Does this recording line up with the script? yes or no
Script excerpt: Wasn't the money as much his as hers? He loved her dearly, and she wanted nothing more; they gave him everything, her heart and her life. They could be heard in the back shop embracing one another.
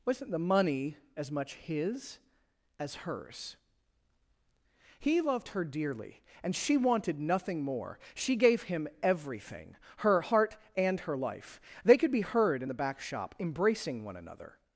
no